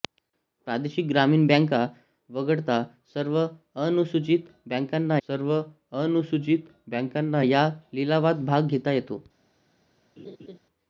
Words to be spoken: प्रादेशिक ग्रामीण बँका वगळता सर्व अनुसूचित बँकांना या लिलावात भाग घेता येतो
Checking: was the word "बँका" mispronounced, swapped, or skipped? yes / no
no